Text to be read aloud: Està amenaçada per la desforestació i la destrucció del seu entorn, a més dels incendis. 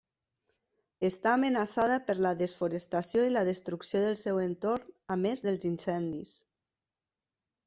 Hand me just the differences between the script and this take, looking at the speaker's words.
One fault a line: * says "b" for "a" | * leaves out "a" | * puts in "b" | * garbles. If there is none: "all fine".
all fine